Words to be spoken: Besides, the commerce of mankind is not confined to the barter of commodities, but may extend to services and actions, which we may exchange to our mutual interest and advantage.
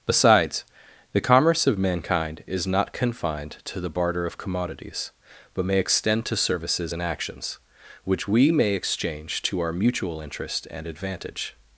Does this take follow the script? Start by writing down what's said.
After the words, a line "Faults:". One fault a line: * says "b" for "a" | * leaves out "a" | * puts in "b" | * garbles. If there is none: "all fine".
Besides, the commerce of mankind is not confined to the barter of commodities, but may extend to services and actions, which we may exchange to our mutual interest and advantage.
Faults:
all fine